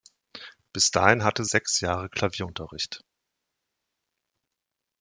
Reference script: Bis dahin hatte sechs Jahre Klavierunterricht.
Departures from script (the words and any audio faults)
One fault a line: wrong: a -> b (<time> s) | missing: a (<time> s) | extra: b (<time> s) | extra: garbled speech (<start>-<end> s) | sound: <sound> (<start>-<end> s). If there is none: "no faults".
no faults